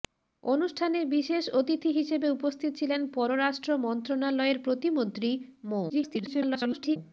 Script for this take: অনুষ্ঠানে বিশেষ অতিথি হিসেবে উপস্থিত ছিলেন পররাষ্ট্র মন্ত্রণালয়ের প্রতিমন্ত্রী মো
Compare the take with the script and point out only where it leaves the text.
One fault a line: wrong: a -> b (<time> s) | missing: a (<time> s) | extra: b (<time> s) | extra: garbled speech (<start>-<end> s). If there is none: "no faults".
extra: garbled speech (5.9-7.0 s)